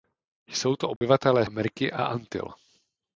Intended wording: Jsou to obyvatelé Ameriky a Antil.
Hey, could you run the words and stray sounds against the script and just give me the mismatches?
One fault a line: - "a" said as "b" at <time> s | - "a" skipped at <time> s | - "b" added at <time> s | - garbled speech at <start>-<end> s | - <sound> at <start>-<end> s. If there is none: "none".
- dropout at 1.0-1.0 s